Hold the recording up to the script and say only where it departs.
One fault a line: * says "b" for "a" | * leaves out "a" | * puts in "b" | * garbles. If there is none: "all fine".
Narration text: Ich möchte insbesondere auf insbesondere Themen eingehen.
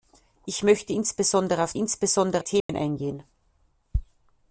all fine